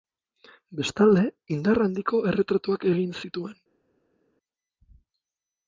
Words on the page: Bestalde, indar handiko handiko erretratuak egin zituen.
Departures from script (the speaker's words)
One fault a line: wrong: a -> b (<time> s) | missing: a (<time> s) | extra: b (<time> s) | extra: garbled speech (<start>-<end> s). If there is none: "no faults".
missing: handiko (2.2 s)